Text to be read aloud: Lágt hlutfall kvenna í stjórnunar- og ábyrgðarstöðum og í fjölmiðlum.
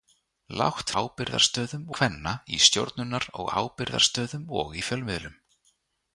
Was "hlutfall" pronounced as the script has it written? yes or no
no